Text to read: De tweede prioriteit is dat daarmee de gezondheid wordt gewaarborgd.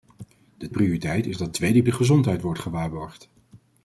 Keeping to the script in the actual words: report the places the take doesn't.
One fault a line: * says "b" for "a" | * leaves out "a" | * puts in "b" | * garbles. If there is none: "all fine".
* leaves out "tweede"
* says "tweede" for "daarmee"